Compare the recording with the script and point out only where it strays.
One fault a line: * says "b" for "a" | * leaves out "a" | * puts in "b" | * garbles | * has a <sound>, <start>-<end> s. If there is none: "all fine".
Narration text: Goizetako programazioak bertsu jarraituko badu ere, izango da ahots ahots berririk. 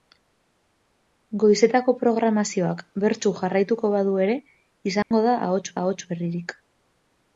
* has a dropout, 5.0-5.1 s